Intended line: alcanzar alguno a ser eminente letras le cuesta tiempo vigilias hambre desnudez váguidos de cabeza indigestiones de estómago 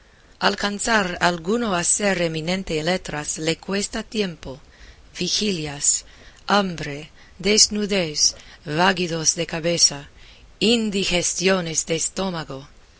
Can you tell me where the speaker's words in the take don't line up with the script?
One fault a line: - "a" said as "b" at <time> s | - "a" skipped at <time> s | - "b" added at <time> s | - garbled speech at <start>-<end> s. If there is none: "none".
none